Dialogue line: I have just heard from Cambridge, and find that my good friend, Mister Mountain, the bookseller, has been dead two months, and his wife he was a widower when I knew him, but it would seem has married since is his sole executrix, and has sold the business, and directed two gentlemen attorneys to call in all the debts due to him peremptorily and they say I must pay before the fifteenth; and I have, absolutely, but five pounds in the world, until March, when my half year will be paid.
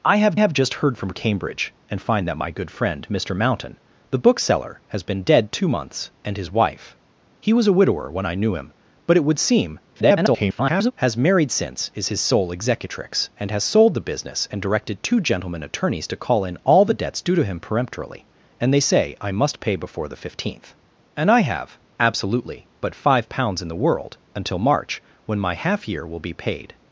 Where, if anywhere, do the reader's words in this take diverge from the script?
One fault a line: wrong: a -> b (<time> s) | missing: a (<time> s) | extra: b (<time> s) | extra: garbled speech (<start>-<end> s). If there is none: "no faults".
extra: have (0.3 s)
extra: garbled speech (9.9-10.9 s)